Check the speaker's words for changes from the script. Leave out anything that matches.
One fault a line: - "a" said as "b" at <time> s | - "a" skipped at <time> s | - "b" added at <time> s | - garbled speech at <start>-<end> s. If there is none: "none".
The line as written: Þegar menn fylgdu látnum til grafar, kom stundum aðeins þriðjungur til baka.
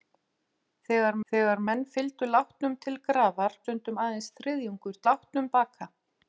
- "þegar" added at 1.3 s
- "kom" skipped at 3.6 s
- "til" said as "látnum" at 5.0 s